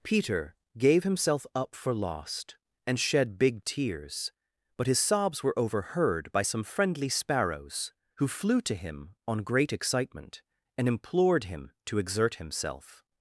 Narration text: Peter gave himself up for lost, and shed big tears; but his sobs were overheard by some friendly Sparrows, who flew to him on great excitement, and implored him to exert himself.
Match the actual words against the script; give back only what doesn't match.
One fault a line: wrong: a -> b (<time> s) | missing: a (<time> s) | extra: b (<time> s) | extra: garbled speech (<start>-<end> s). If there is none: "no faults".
no faults